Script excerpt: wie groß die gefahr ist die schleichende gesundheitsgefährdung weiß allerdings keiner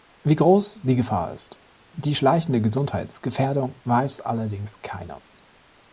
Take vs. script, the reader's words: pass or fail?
pass